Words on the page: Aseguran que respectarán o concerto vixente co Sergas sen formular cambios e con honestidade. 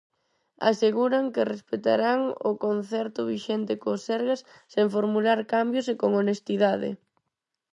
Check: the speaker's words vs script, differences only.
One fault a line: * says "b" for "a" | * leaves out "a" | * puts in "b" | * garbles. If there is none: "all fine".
all fine